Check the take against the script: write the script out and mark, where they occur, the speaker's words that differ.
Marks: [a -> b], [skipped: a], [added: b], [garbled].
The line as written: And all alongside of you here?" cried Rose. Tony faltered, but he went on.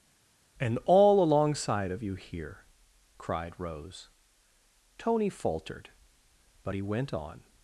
And all alongside of you here?" cried Rose. Tony faltered, but he went on.